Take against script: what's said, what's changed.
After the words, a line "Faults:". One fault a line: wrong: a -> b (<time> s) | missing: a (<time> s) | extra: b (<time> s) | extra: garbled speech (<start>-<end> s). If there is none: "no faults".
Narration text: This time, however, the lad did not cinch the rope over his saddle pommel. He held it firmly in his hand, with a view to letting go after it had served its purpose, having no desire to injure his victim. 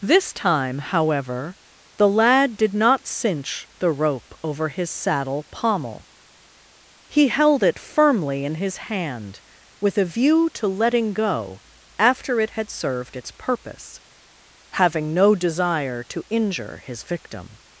This time, however, the lad did not cinch the rope over his saddle pommel. He held it firmly in his hand, with a view to letting go after it had served its purpose, having no desire to injure his victim.
Faults:
no faults